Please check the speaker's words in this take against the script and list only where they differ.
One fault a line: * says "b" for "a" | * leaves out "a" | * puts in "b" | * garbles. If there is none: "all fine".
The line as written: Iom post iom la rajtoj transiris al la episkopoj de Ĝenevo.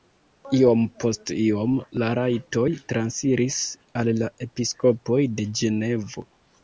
all fine